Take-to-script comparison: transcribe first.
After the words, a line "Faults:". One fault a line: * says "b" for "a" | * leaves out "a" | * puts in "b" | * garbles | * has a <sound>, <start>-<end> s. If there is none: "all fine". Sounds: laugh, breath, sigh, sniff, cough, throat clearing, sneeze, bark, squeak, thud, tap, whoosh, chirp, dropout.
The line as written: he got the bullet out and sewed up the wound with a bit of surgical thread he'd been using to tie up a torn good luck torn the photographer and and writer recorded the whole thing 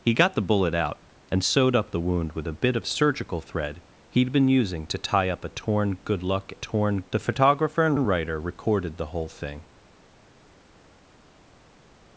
he got the bullet out and sewed up the wound with a bit of surgical thread he'd been using to tie up a torn good luck torn the photographer and and writer recorded the whole thing
Faults:
all fine